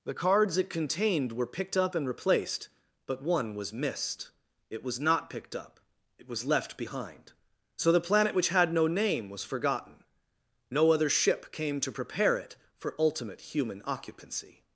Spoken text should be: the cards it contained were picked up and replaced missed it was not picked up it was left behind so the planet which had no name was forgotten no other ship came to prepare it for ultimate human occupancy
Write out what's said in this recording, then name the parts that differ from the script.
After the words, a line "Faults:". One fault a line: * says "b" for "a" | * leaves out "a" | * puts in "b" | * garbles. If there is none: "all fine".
the cards it contained were picked up and replaced but one was missed it was not picked up it was left behind so the planet which had no name was forgotten no other ship came to prepare it for ultimate human occupancy
Faults:
* puts in "but one was"